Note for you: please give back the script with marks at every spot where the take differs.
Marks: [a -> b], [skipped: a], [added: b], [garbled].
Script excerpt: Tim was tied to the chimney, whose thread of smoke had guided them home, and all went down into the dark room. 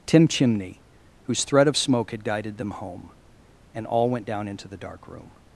Tim [skipped: was tied to the] chimney, whose thread of smoke had guided them home, and all went down into the dark room.